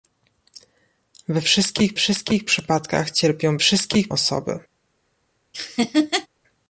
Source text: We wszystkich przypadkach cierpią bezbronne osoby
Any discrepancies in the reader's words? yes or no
yes